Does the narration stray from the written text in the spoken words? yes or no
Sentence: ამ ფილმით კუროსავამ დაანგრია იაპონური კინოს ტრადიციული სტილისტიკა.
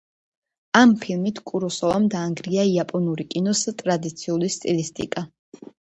no